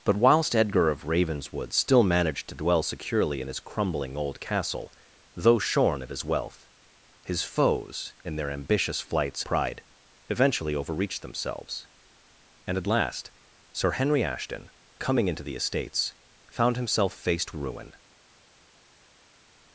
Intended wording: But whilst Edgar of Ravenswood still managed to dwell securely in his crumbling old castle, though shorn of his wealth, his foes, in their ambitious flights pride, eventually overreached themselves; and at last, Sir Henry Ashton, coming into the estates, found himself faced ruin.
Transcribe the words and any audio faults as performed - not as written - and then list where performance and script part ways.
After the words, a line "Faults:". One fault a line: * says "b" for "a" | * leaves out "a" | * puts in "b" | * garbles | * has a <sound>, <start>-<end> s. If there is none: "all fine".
But whilst Edgar of Ravenswood still managed to dwell securely in his crumbling old castle, though shorn of his wealth, his foes, in their ambitious flights pride, eventually overreached themselves; and at last, Sir Henry Ashton, coming into the estates, found himself faced ruin.
Faults:
all fine